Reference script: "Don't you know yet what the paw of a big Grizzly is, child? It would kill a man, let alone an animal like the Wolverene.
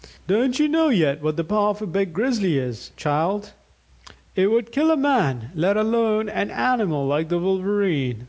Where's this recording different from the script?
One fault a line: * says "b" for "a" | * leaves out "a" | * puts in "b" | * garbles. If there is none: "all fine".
all fine